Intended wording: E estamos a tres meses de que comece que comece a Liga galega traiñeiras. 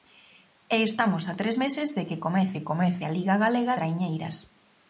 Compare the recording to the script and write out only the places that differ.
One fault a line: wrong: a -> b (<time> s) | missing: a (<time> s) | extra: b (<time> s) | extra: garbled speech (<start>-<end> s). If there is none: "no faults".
no faults